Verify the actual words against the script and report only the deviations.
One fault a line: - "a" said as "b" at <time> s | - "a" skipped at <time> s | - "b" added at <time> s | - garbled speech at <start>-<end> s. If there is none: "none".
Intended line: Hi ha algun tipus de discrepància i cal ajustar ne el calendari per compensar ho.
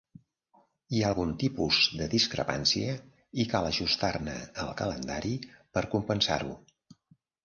none